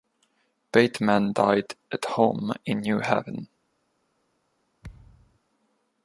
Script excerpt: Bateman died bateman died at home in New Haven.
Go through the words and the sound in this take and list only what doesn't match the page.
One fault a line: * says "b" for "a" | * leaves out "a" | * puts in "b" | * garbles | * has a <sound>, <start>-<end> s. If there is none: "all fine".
* leaves out "bateman died"
* has a thud, 4.8-5.4 s